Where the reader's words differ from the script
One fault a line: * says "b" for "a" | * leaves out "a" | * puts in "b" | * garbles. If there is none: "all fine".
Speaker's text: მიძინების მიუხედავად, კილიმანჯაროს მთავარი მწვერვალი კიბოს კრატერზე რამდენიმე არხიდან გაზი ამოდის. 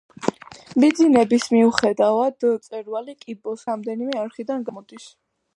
* leaves out "კილიმანჯაროს მთავარი"
* leaves out "კრატერზე"
* leaves out "გაზი"